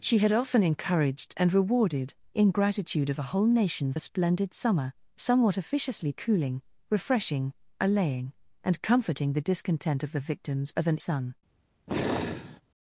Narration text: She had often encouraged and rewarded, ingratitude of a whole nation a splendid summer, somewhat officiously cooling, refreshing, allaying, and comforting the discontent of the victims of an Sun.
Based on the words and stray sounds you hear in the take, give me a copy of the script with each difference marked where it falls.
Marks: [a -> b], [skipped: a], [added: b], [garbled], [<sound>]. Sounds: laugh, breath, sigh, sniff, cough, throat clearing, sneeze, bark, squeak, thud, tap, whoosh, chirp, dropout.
She had often encouraged and rewarded, ingratitude of a whole nation a splendid summer, somewhat officiously cooling, refreshing, allaying, and comforting the discontent of the victims of an Sun. [sigh]